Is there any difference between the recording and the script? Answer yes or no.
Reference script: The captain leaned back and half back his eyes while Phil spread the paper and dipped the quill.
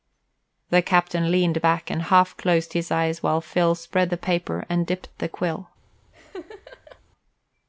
yes